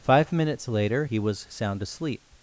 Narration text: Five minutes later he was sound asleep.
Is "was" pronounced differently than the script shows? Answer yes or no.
no